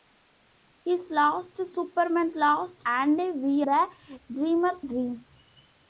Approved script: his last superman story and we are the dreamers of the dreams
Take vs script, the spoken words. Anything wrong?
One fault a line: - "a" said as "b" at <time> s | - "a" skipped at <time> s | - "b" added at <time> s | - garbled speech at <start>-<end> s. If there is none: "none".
- "story" said as "last" at 2.3 s
- "are" skipped at 3.6 s
- "of the" skipped at 4.8 s